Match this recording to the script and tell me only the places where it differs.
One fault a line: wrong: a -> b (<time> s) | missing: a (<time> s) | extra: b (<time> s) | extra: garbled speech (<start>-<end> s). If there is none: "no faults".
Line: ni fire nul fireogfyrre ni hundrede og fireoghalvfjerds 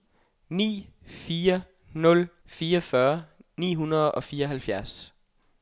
no faults